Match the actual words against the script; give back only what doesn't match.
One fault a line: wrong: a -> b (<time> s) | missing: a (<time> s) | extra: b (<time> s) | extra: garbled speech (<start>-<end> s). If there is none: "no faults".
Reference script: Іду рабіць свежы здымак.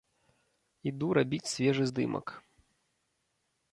no faults